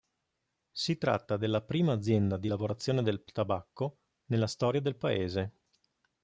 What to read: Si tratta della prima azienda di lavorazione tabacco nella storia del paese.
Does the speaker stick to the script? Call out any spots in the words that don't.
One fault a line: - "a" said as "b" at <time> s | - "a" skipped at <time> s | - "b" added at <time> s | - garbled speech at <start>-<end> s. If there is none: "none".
- "del" added at 3.0 s